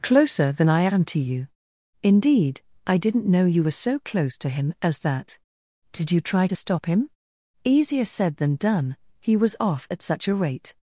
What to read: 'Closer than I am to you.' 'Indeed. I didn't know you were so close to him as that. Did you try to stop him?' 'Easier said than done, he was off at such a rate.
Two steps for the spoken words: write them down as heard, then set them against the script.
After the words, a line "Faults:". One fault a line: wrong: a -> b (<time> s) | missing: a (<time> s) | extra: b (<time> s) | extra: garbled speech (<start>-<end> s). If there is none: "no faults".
'Closer than I am to you.' 'Indeed. I didn't know you were so close to him as that. Did you try to stop him?' 'Easier said than done, he was off at such a rate.
Faults:
no faults